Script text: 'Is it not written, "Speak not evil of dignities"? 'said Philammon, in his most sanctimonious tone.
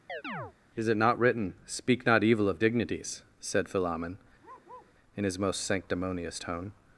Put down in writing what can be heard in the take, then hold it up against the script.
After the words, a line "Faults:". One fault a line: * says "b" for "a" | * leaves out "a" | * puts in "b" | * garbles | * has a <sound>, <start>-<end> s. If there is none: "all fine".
'Is it not written, "Speak not evil of dignities"? 'said Philammon, in his most sanctimonious tone.
Faults:
* has a chirp, 0.1-0.5 s
* has a bark, 4.4-5.0 s